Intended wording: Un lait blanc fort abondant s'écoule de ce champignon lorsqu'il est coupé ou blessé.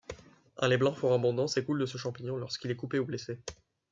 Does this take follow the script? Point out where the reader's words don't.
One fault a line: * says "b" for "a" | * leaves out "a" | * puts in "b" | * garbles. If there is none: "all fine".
all fine